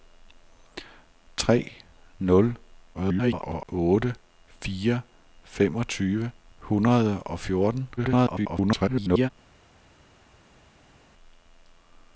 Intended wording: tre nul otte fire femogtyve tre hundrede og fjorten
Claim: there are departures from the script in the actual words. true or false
true